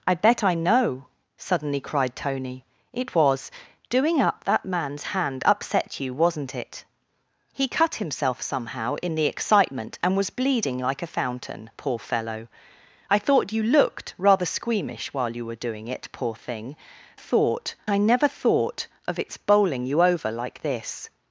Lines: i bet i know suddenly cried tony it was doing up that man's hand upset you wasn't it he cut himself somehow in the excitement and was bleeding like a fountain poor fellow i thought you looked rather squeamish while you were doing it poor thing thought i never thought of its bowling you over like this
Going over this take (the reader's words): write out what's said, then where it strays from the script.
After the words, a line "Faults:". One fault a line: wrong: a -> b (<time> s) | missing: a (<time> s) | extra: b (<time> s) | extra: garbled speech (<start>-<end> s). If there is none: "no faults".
i bet i know suddenly cried tony it was doing up that man's hand upset you wasn't it he cut himself somehow in the excitement and was bleeding like a fountain poor fellow i thought you looked rather squeamish while you were doing it poor thing thought i never thought of its bowling you over like this
Faults:
no faults